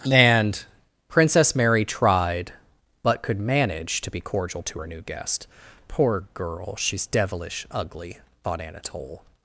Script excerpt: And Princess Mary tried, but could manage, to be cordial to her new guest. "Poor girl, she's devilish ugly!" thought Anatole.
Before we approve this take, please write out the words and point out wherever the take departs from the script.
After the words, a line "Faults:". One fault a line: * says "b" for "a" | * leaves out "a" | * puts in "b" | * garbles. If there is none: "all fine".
And Princess Mary tried, but could manage, to be cordial to her new guest. "Poor girl, she's devilish ugly!" thought Anatole.
Faults:
all fine